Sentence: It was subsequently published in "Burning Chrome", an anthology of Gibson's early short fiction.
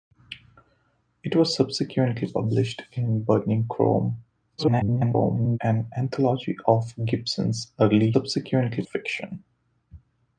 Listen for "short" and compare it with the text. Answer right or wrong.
wrong